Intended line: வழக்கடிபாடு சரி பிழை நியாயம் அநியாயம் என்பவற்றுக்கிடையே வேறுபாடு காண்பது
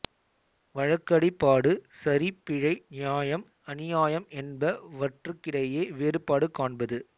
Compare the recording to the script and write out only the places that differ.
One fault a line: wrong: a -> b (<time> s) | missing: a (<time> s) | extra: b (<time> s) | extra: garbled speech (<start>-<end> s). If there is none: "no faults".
no faults